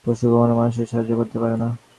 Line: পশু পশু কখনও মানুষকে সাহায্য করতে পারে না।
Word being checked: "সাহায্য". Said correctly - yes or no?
yes